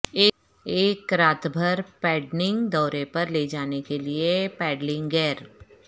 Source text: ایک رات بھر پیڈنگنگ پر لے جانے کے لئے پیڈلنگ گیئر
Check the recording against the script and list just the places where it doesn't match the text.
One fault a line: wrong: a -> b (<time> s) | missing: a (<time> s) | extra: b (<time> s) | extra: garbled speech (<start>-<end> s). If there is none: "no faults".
extra: دورے (2.7 s)